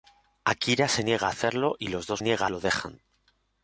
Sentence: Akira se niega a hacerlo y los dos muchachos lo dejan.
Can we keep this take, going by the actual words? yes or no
no